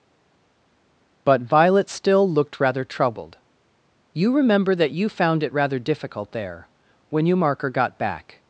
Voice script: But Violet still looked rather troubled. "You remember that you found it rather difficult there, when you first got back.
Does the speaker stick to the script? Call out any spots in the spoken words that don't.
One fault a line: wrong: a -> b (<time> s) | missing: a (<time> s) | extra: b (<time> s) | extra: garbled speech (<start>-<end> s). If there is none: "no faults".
wrong: first -> marker (7.4 s)